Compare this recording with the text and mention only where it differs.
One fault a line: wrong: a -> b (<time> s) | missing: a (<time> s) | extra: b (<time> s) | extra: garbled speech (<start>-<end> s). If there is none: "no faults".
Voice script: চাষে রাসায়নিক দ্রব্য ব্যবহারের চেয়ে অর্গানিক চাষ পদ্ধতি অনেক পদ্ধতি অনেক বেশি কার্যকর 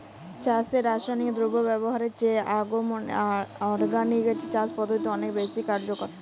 missing: পদ্ধতি অনেক (5.3 s)